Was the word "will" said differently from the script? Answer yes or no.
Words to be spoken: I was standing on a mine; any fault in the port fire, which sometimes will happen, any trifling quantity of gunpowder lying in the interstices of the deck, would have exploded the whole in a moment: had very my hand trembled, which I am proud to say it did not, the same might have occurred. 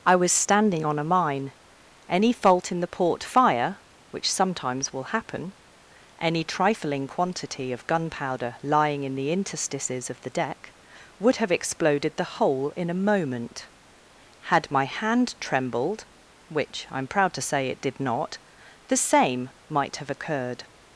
no